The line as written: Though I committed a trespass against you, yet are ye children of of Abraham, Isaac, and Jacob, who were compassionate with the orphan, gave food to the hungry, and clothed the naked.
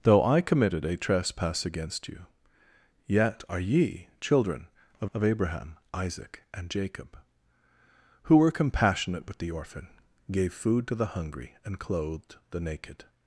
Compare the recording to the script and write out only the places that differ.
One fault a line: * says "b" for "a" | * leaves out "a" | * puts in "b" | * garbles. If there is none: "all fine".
all fine